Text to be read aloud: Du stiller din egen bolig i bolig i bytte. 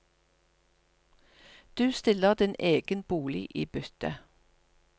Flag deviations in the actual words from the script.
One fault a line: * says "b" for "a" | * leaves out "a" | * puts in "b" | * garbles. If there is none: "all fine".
* leaves out "bolig i"